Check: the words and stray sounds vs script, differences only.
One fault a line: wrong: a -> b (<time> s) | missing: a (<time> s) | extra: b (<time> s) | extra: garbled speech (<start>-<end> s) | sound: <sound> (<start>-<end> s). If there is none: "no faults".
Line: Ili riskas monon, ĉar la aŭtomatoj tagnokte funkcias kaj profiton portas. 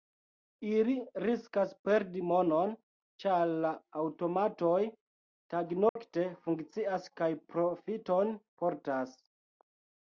extra: perdi (1.9 s)
sound: dropout (5.9-6.0 s)